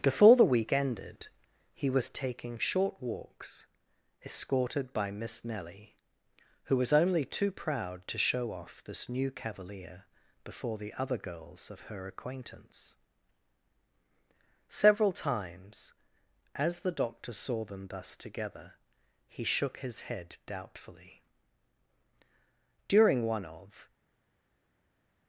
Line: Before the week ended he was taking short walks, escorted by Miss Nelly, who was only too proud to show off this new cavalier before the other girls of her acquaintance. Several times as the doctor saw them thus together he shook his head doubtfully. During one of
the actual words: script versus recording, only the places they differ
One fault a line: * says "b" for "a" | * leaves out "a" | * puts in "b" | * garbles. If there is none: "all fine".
all fine